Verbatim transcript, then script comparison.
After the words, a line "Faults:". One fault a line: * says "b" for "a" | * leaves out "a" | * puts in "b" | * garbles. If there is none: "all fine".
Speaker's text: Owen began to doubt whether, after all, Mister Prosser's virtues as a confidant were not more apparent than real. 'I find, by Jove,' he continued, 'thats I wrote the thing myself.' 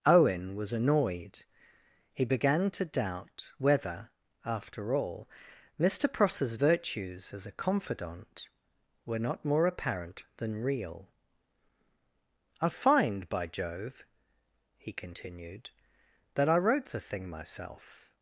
Owen was annoyed. He began to doubt whether, after all, Mister Prosser's virtues as a confidant were not more apparent than real. 'I find, by Jove,' he continued, 'that I wrote the thing myself.'
Faults:
* puts in "was annoyed He"
* says "that" for "thats"